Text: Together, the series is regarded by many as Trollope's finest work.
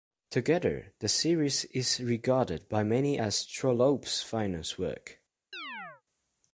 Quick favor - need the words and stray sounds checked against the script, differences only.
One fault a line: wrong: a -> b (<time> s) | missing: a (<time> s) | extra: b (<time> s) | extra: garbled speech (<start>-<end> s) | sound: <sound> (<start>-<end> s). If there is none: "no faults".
sound: chirp (5.5-6.0 s)